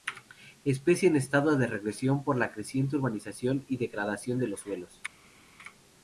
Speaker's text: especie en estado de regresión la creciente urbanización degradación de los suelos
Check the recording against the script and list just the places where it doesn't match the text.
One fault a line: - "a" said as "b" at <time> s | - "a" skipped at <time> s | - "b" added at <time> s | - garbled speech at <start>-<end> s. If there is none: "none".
- "por" added at 2.2 s
- "y" added at 3.7 s